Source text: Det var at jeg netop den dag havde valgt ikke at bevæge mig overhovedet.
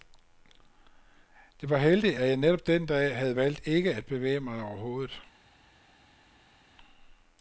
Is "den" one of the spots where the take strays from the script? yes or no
no